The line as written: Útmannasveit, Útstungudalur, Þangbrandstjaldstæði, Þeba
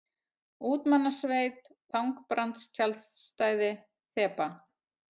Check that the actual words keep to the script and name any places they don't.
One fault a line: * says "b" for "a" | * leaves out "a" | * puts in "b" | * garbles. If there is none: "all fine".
* leaves out "Útstungudalur"